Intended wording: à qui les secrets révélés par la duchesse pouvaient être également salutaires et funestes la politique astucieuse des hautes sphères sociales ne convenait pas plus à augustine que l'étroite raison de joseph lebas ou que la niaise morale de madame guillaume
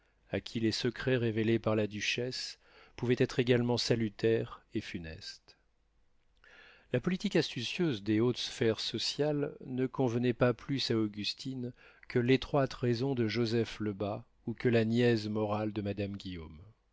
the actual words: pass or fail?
pass